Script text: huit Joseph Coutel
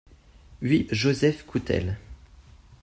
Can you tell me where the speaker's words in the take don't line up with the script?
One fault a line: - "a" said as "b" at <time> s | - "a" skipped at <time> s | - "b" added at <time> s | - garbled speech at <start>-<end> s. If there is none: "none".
none